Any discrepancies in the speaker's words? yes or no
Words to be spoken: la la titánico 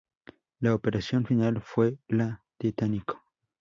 yes